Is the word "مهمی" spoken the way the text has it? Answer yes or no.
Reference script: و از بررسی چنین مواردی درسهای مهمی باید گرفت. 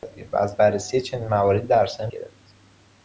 no